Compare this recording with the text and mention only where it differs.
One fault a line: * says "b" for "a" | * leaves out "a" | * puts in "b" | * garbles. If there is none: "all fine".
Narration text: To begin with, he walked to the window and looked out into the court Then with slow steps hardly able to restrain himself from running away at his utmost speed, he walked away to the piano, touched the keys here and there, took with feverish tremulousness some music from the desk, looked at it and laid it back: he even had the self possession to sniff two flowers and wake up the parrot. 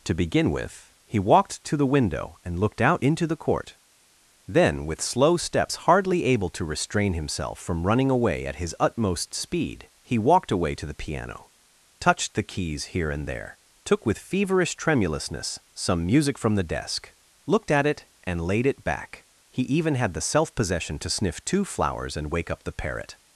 all fine